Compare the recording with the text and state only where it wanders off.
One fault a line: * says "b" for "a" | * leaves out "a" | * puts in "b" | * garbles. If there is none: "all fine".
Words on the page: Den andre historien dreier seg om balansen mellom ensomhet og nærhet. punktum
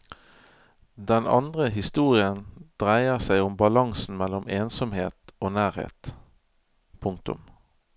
all fine